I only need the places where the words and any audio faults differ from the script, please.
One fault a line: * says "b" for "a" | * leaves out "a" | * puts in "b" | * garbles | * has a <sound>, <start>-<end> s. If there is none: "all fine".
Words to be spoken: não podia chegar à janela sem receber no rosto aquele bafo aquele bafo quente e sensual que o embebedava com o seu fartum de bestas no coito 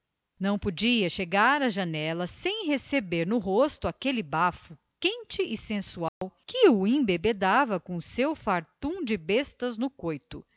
* leaves out "aquele bafo"
* has a dropout, 6.1-6.2 s